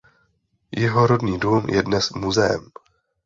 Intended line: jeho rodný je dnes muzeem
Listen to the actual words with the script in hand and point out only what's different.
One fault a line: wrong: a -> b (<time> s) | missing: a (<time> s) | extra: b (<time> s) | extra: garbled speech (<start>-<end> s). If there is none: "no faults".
extra: dům (1.4 s)